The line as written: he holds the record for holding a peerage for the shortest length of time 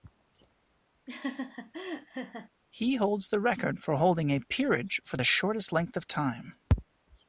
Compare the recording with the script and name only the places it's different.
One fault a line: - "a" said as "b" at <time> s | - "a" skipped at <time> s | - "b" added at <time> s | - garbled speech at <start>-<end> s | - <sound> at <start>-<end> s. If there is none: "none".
- laugh at 1.1-2.5 s